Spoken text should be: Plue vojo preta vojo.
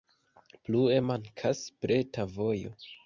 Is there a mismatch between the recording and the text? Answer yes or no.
yes